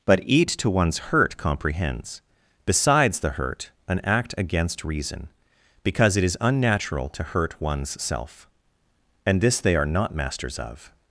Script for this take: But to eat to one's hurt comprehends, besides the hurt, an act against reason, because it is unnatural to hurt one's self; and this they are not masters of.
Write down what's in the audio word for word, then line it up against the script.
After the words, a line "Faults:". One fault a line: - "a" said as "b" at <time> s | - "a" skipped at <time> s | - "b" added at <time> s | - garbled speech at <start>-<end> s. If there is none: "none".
But eat to one's hurt comprehends, besides the hurt, an act against reason, because it is unnatural to hurt one's self; and this they are not masters of.
Faults:
- "to" skipped at 0.2 s